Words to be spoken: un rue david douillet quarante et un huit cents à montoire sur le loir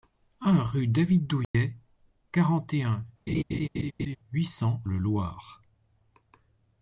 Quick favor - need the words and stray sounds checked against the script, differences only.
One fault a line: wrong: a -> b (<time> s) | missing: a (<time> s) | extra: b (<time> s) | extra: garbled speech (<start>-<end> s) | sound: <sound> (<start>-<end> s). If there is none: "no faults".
sound: dropout (1.4-1.5 s)
sound: laugh (3.3-4.2 s)
missing: à montoire sur (4.8 s)